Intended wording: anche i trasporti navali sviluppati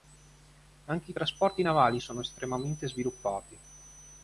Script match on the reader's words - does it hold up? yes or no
no